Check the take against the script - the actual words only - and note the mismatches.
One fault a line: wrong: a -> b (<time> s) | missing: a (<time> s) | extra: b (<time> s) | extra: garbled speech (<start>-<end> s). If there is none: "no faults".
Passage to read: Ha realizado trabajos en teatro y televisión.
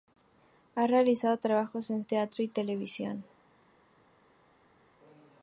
no faults